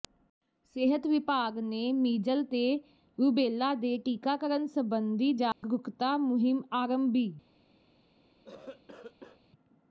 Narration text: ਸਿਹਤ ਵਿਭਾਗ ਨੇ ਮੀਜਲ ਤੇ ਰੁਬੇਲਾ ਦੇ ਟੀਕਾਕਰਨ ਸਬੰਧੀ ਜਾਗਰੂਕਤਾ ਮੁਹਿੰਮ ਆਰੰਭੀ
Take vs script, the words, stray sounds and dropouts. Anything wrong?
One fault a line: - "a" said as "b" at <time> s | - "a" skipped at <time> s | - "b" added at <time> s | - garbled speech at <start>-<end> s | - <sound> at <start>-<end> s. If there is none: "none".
- dropout at 5.5-5.6 s
- cough at 8.4-9.5 s